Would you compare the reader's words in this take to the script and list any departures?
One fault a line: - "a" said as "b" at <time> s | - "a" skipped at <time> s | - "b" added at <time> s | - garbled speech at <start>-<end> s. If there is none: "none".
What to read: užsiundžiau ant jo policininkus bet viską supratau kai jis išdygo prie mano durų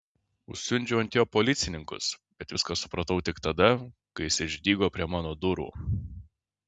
- "tik tada" added at 3.3 s